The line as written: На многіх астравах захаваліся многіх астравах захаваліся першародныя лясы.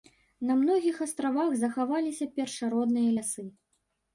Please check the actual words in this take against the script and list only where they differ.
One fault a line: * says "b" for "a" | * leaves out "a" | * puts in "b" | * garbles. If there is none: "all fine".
* leaves out "многіх астравах захаваліся"